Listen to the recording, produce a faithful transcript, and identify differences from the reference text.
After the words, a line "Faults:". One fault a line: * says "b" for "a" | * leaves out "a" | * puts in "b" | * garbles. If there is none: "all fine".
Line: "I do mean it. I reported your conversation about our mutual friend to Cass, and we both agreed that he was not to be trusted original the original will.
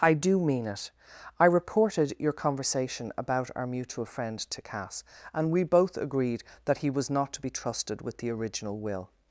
"I do mean it. I reported your conversation about our mutual friend to Cass, and we both agreed that he was not to be trusted with the original will.
Faults:
* says "with" for "original"